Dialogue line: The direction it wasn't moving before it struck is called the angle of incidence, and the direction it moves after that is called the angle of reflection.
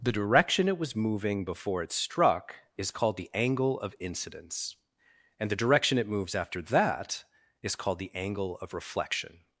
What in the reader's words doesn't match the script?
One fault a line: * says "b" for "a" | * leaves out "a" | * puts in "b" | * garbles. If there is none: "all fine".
* says "was" for "wasn't"